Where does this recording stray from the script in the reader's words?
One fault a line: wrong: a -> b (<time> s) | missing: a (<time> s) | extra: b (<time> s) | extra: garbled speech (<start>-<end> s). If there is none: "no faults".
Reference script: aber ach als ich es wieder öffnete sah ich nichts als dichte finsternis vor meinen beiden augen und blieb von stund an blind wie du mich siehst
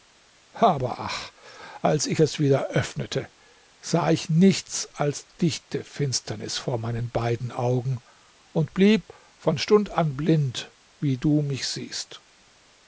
no faults